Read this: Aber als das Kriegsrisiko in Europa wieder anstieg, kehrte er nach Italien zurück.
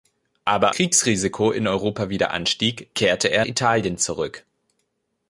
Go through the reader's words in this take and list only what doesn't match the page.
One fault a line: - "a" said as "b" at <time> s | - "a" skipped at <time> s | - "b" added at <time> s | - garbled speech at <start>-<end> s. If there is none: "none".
- "als das" skipped at 0.7 s
- "nach" skipped at 3.5 s